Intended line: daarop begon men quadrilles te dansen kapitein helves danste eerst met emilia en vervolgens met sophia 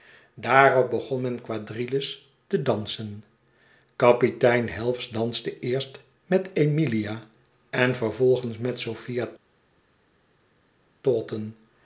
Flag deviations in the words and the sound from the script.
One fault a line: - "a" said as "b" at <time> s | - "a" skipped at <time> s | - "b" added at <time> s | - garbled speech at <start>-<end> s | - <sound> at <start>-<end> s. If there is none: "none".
none